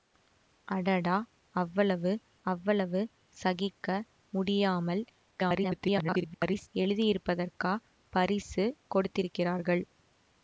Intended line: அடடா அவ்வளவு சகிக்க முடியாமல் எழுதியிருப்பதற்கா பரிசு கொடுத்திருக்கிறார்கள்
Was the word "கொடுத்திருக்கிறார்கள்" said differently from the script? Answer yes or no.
no